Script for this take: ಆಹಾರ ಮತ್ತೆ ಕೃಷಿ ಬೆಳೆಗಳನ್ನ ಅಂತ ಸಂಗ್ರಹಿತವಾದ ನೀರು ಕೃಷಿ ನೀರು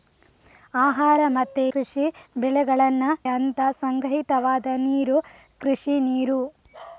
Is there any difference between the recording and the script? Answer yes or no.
no